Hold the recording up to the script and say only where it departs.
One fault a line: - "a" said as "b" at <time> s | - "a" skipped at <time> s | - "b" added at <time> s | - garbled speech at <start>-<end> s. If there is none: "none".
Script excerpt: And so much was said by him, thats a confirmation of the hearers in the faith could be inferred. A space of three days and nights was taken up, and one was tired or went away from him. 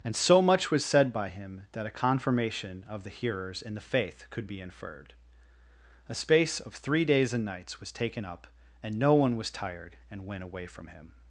- "thats" said as "that" at 1.7 s
- "no" added at 9.0 s
- "or" said as "and" at 10.1 s